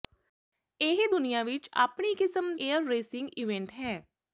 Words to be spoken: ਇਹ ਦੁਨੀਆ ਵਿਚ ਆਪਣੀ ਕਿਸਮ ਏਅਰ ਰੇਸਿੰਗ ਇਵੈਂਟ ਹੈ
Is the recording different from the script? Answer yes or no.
no